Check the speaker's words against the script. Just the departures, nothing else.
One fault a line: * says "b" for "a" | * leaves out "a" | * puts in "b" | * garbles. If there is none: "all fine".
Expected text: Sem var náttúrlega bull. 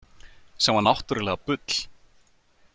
all fine